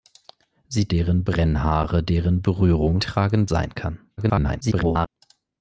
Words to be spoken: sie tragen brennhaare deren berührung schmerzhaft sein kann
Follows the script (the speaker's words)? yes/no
no